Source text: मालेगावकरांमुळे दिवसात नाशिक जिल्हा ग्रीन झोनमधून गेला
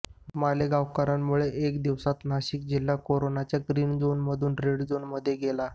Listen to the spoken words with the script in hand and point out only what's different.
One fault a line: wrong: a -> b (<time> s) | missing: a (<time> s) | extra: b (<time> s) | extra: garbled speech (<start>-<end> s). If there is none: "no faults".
extra: एका (1.6 s)
extra: कोरोनाच्या (3.0 s)
extra: रेड झोनमध्ये (4.6 s)